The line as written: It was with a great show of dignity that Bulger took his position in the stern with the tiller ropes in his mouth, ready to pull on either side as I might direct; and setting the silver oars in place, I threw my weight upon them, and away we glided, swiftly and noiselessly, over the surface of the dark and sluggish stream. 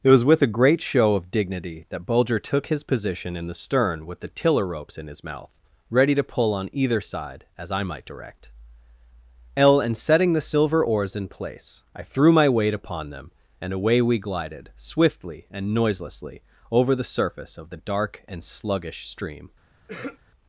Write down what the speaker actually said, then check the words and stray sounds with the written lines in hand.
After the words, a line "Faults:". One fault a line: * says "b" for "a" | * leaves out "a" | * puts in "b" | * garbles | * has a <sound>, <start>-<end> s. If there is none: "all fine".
It was with a great show of dignity that Bulger took his position in the stern with the tiller ropes in his mouth, ready to pull on either side as I might direct; l and setting the silver oars in place, I threw my weight upon them, and away we glided, swiftly and noiselessly, over the surface of the dark and sluggish stream.
Faults:
* puts in "l"
* has a throat clearing, 19.9-20.2 s